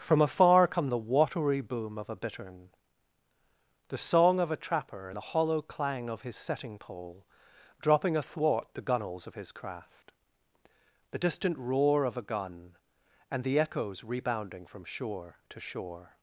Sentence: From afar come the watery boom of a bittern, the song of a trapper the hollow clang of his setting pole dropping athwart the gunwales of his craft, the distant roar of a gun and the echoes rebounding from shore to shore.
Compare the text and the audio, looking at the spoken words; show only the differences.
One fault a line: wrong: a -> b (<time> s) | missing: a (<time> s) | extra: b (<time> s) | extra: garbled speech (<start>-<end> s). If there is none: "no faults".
no faults